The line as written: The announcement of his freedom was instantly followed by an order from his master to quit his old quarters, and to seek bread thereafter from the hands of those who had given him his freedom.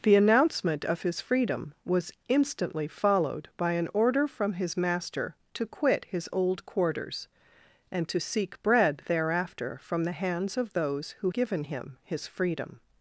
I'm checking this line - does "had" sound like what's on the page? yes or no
no